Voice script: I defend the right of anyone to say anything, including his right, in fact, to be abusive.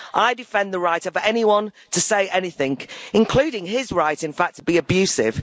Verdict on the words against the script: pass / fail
pass